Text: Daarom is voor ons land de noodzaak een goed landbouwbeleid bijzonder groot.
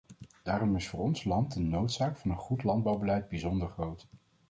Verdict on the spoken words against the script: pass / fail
fail